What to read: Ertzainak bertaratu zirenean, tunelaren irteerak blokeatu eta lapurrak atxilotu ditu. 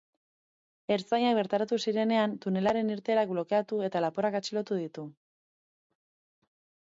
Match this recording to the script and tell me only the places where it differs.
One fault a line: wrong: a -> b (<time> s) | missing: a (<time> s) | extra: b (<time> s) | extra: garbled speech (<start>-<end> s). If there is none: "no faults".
no faults